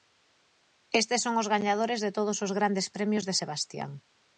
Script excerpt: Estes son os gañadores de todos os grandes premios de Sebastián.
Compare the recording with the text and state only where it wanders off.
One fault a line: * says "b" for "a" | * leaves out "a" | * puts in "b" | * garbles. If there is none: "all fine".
all fine